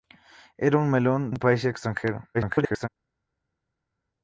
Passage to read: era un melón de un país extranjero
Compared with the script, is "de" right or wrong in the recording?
wrong